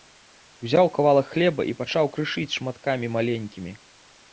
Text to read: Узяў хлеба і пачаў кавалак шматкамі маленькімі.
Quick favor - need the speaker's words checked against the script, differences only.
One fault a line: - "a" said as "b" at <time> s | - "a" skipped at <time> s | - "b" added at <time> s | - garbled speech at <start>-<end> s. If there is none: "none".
- "кавалак" added at 0.9 s
- "кавалак" said as "крышыць" at 2.2 s